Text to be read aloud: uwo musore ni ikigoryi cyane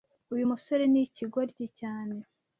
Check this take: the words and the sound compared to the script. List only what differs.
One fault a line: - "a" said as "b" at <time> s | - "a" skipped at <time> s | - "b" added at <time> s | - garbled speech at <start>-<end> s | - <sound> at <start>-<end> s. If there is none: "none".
- "uwo" said as "uyu" at 0.3 s